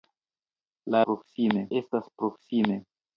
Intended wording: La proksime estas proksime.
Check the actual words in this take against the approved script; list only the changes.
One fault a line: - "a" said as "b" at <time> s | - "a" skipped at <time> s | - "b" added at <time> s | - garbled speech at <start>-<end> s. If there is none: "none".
none